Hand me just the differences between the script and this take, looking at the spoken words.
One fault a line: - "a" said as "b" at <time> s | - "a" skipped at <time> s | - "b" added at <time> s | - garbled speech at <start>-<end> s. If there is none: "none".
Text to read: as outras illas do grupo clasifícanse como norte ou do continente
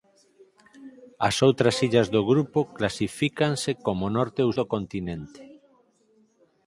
none